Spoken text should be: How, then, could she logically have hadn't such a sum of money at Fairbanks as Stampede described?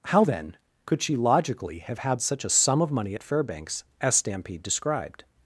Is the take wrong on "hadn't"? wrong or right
wrong